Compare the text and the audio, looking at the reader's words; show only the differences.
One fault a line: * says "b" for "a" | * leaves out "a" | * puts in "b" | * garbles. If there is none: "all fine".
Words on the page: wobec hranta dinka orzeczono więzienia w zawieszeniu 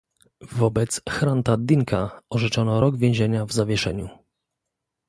* puts in "rok"